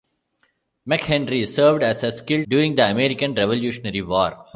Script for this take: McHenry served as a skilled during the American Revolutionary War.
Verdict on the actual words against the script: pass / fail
pass